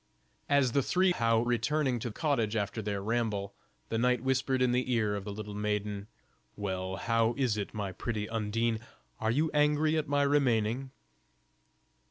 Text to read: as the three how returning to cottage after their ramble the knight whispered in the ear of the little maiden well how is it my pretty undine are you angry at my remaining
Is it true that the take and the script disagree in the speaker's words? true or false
false